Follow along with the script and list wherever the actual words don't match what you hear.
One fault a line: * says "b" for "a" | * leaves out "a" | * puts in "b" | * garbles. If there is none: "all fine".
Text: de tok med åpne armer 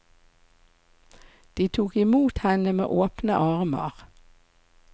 * puts in "imot henne"